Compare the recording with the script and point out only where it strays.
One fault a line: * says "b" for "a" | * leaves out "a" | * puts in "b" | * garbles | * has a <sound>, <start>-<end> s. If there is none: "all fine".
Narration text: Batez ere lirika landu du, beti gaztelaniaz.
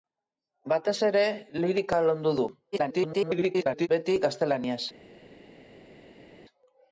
* garbles